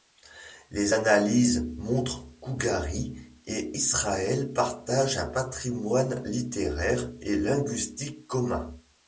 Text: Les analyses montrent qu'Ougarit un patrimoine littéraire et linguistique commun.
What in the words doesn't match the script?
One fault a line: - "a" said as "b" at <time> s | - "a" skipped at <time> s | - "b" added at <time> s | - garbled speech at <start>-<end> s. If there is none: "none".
- "et Israël partagent" added at 3.5 s